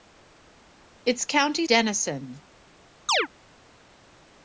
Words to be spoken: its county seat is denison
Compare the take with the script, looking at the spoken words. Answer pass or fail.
fail